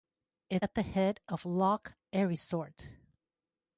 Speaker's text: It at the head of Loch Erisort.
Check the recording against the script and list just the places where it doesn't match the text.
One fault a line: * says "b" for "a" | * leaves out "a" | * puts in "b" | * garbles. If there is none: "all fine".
all fine